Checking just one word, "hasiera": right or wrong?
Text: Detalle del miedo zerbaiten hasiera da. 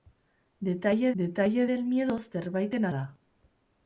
wrong